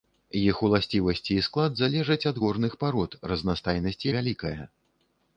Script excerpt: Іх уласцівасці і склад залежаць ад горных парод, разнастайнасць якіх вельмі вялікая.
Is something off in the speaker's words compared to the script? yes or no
yes